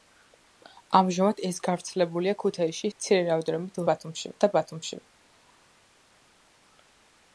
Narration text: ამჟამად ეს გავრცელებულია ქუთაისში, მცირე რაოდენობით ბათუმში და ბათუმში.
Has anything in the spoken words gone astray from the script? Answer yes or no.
no